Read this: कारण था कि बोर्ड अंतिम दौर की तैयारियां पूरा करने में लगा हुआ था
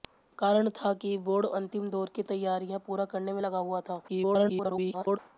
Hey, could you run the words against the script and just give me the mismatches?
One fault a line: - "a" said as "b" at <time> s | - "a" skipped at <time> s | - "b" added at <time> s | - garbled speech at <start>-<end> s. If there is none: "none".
- garbled speech at 4.1-5.2 s